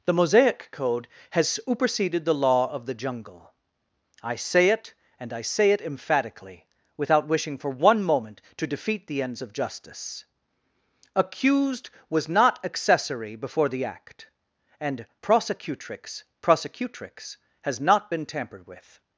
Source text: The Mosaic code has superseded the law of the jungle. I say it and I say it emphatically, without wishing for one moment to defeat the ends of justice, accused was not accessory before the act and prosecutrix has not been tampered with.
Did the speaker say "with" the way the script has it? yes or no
yes